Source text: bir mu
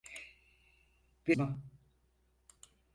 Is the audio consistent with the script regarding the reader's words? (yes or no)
yes